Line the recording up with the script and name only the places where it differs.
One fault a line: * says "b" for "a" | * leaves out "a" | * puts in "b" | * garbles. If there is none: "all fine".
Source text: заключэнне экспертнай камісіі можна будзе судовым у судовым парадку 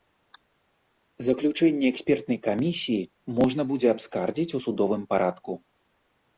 * says "абскардзіць" for "судовым"